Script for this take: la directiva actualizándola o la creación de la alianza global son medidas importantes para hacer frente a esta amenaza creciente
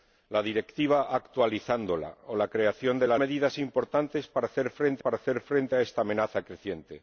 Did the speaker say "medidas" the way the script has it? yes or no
no